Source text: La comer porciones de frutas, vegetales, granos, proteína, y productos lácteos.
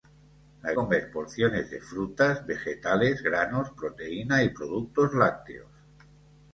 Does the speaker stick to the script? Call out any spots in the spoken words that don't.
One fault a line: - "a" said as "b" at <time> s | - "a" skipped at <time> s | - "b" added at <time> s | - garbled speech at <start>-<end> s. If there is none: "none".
none